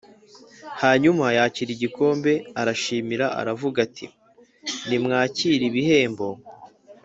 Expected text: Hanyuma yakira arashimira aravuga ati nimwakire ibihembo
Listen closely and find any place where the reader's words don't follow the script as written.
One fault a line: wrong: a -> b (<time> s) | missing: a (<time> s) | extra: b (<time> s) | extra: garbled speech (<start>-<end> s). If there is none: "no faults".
extra: igikombe (1.7 s)